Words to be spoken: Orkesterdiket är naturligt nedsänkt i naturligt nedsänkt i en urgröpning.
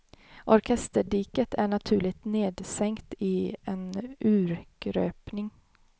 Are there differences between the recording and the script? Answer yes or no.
yes